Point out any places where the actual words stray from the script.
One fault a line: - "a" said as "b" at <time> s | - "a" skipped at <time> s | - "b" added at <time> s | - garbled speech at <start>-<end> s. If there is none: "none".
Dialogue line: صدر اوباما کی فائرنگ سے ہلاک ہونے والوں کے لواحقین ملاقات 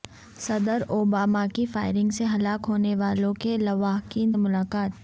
none